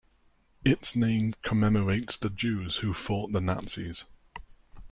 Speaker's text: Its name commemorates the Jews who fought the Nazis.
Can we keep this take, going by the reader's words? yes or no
yes